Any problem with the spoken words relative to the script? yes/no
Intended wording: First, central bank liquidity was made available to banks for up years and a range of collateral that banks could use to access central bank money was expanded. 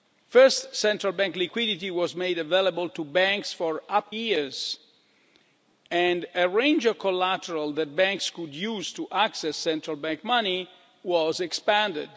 no